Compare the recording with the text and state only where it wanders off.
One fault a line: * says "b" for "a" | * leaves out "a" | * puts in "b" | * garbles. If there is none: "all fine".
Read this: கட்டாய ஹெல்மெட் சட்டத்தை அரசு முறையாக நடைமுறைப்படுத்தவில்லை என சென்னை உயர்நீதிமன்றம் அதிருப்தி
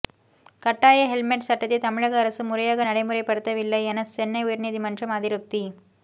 * puts in "தமிழக"